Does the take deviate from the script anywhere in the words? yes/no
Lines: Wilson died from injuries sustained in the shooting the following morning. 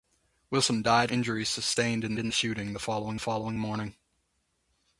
yes